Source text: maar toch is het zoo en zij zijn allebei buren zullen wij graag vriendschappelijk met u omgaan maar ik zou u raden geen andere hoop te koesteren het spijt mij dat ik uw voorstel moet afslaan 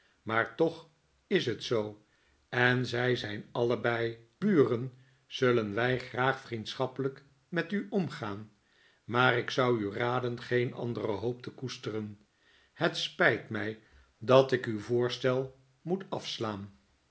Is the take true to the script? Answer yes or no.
yes